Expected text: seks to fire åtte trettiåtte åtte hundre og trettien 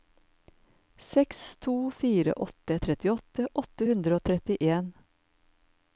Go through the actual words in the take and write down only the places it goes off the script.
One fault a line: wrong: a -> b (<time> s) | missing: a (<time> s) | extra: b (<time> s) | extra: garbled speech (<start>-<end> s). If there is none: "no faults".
no faults